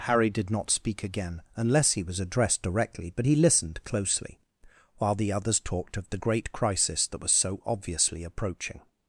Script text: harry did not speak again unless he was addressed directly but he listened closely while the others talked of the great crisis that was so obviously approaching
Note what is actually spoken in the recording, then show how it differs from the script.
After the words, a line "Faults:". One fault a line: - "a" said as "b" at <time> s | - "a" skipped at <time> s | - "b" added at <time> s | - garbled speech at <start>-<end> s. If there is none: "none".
harry did not speak again unless he was addressed directly but he listened closely while the others talked of the great crisis that was so obviously approaching
Faults:
none